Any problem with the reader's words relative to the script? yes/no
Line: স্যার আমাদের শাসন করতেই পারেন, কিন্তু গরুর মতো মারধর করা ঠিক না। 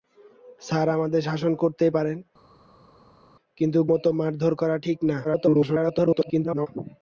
yes